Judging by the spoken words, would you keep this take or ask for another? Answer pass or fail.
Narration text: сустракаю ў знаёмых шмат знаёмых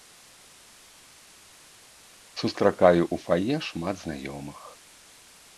fail